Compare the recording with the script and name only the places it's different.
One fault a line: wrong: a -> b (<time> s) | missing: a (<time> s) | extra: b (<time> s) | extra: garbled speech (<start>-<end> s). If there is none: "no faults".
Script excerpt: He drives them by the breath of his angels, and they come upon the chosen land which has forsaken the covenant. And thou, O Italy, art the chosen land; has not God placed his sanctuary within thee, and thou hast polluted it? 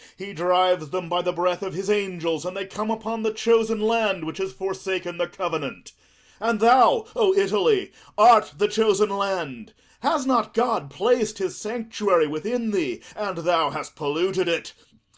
no faults